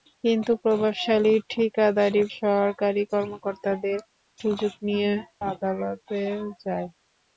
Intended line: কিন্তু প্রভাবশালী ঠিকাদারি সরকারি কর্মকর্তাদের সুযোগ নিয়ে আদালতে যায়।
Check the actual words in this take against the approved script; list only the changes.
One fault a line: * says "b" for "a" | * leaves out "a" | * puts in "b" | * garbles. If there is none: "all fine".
all fine